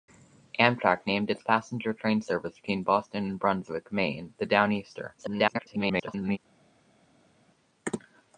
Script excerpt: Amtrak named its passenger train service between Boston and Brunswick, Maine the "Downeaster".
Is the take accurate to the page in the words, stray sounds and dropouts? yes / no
no